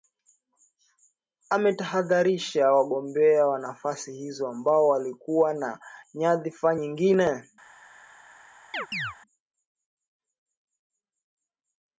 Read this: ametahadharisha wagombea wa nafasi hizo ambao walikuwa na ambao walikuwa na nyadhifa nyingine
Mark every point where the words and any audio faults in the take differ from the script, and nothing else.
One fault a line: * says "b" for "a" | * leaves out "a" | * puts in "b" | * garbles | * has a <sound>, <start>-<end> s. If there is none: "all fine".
* leaves out "ambao walikuwa na"
* has a chirp, 8.7-9.2 s